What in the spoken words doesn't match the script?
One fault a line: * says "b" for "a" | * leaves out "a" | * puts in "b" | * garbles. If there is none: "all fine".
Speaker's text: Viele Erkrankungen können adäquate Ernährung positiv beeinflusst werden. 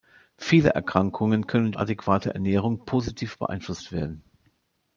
all fine